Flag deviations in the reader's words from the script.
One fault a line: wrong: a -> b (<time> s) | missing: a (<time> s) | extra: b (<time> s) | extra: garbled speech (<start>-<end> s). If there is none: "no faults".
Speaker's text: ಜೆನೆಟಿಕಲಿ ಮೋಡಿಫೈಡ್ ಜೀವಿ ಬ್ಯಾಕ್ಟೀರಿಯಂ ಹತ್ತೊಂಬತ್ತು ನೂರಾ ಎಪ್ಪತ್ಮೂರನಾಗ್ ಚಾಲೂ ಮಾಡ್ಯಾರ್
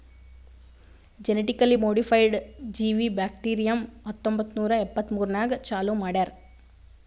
no faults